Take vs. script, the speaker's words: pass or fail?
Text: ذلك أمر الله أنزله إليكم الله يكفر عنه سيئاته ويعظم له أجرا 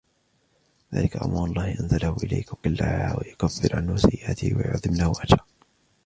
pass